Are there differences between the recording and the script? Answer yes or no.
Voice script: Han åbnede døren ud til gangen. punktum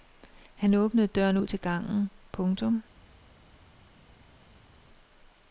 no